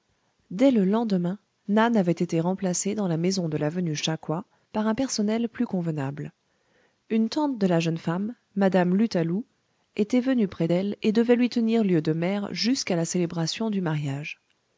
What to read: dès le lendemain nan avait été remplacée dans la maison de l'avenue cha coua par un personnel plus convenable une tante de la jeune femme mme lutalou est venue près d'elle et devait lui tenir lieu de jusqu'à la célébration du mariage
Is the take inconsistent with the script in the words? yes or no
yes